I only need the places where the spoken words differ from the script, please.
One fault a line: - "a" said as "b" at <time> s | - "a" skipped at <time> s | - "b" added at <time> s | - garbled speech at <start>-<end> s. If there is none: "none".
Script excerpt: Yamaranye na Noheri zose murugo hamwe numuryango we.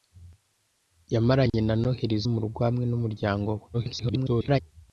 - "zose" skipped at 2.2 s
- garbled speech at 3.7-4.6 s